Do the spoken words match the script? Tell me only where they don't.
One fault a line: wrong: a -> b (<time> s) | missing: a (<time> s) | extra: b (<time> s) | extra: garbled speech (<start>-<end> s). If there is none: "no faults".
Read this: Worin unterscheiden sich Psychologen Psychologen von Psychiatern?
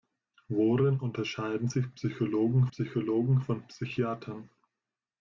no faults